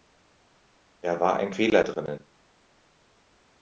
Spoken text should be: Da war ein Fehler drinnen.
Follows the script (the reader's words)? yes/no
yes